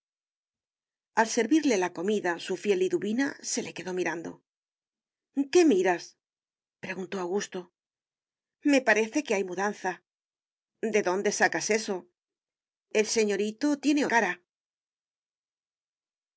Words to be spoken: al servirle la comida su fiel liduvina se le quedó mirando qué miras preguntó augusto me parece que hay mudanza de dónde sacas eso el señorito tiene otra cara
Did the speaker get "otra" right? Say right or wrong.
wrong